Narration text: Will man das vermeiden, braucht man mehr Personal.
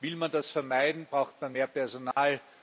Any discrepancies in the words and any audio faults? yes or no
yes